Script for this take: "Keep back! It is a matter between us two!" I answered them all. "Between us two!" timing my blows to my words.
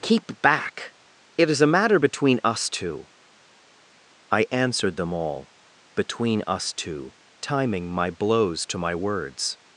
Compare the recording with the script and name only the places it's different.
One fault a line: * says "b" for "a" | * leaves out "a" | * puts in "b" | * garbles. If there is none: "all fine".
all fine